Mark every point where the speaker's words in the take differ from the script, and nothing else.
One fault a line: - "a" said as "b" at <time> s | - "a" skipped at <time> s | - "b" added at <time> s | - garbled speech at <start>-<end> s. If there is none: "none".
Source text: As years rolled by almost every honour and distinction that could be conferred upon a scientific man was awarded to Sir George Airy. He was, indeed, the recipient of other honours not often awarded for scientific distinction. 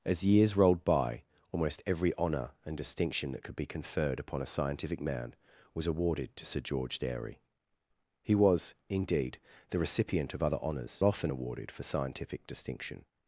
- "not" skipped at 11.0 s